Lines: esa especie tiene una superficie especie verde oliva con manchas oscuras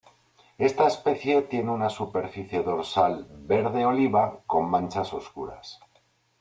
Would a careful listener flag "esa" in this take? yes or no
yes